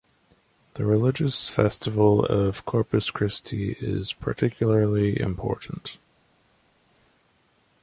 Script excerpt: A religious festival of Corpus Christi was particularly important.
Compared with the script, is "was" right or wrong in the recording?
wrong